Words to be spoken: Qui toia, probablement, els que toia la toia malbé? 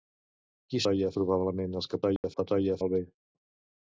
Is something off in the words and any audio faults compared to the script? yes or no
yes